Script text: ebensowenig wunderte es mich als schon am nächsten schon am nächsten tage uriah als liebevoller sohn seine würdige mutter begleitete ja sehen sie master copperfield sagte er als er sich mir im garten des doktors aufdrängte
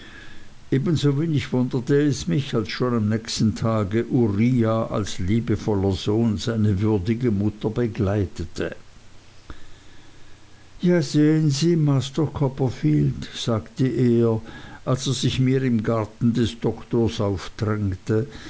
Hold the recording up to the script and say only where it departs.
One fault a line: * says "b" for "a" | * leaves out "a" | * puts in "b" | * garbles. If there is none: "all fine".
* leaves out "schon am nächsten"